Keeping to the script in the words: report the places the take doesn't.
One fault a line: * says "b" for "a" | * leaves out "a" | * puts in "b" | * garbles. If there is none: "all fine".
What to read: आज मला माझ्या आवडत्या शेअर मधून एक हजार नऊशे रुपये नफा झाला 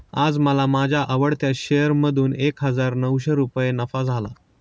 all fine